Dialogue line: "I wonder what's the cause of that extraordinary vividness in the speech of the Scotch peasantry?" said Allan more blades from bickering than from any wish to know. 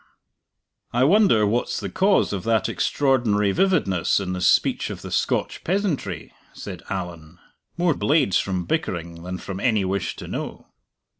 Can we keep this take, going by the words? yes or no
yes